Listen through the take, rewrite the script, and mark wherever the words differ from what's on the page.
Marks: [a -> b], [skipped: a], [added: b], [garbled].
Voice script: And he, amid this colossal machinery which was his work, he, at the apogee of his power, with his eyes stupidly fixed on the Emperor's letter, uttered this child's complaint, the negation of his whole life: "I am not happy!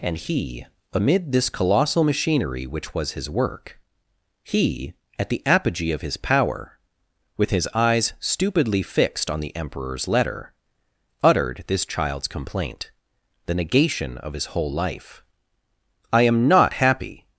And he, amid this colossal machinery which was his work, he, at the apogee of his power, with his eyes stupidly fixed on the Emperor's letter, uttered this child's complaint, the negation of his whole life: "I am not happy!